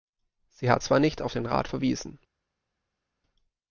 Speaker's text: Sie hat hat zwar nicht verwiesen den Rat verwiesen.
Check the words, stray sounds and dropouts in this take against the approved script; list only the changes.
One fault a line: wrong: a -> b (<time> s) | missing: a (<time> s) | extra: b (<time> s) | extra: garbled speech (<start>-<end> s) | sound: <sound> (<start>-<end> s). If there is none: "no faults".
missing: hat (0.8 s)
wrong: verwiesen -> auf (1.2 s)